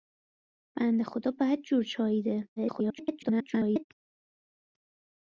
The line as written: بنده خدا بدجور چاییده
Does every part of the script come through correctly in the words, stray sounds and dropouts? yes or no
no